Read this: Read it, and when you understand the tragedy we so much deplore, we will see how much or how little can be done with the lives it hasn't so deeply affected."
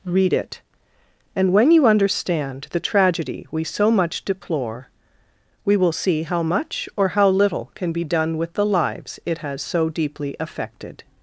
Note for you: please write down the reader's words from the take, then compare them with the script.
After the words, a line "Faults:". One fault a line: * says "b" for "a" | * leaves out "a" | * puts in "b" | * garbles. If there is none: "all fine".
Read it, and when you understand the tragedy we so much deplore, we will see how much or how little can be done with the lives it has so deeply affected."
Faults:
* says "has" for "hasn't"